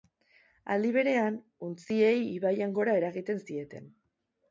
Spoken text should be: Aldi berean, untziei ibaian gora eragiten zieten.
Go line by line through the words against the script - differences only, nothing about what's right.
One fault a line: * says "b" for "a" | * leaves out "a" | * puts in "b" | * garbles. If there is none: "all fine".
all fine